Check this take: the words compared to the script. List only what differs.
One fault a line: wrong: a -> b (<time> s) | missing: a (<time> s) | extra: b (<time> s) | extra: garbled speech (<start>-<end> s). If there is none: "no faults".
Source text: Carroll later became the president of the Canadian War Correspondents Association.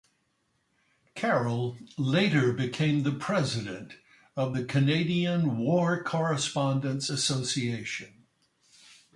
no faults